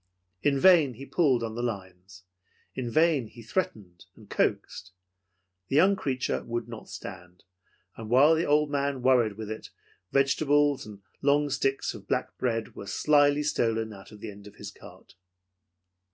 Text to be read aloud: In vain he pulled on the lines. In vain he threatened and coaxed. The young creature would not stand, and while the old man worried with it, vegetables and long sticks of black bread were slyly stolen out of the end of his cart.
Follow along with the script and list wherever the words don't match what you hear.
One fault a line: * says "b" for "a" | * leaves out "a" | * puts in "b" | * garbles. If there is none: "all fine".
all fine